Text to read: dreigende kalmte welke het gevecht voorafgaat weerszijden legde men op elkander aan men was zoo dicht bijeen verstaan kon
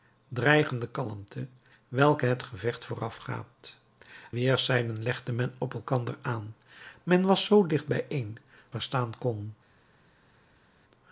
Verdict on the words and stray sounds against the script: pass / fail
pass